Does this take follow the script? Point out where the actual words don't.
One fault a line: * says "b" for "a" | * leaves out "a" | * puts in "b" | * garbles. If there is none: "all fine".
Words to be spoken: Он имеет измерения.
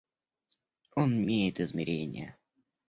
all fine